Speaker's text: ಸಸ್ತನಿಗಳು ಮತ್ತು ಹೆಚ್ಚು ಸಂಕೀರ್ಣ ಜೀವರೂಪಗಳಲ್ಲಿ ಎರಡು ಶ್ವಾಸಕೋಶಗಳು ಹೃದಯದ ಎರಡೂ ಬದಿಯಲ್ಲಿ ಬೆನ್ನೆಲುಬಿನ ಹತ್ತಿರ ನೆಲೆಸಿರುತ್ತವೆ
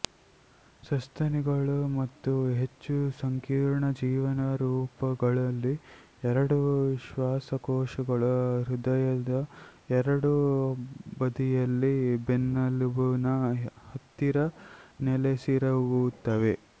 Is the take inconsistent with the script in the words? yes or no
no